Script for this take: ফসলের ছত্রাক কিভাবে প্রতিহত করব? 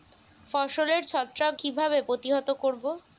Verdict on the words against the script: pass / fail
pass